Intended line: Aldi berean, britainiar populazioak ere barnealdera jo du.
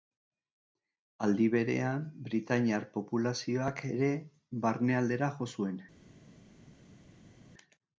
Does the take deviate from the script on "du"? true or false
true